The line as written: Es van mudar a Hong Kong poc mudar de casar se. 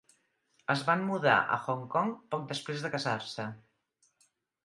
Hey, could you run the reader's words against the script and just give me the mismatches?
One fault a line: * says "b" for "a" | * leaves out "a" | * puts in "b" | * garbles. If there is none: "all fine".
* says "després" for "mudar"